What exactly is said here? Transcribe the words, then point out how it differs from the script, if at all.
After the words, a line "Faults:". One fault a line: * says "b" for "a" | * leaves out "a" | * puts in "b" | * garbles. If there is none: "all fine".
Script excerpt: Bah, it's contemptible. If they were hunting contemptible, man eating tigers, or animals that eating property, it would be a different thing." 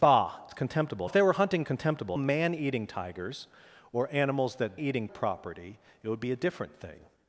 Bah, it's contemptible. If they were hunting contemptible, man eating tigers, or animals that eating property, it would be a different thing."
Faults:
all fine